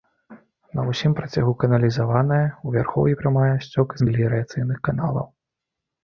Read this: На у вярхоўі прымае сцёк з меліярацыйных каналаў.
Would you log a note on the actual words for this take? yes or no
yes